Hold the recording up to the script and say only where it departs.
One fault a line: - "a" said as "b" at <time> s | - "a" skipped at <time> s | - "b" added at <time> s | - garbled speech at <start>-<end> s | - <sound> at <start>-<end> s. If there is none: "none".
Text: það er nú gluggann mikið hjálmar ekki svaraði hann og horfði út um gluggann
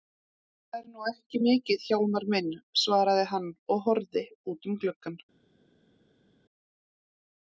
- "gluggann" said as "ekki" at 1.1 s
- "ekki" said as "minn" at 2.4 s